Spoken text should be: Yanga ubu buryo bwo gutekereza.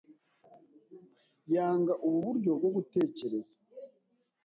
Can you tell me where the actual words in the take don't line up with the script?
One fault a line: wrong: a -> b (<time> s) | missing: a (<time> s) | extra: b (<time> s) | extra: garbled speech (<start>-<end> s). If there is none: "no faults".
no faults